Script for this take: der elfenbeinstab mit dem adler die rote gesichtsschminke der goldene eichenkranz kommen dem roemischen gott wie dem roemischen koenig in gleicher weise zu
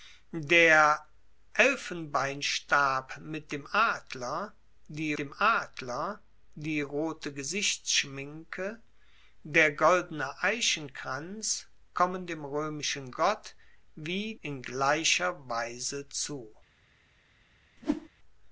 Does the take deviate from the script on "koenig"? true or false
true